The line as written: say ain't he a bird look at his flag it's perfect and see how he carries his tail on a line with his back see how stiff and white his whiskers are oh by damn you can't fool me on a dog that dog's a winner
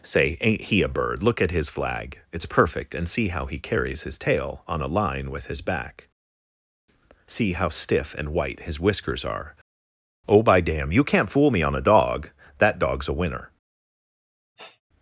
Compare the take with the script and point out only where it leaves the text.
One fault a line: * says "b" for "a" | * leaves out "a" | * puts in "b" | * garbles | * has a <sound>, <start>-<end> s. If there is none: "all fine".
* has a sniff, 14.6-14.8 s